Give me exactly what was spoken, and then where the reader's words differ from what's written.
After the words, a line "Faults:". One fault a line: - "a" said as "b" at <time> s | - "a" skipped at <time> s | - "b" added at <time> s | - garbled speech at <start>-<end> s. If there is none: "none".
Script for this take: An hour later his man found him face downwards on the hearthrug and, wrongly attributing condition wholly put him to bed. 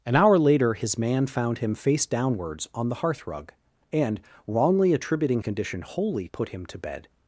An hour later his man found him face downwards on the hearthrug and, wrongly attributing condition wholly put him to bed.
Faults:
none